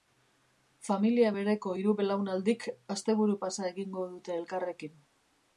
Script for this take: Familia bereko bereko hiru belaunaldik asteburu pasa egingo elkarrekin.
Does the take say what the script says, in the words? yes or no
no